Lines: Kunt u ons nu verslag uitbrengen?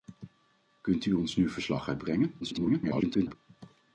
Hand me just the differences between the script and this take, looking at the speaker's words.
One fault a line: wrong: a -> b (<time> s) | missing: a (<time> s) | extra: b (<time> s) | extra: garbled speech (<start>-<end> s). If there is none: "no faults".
extra: garbled speech (2.4-3.4 s)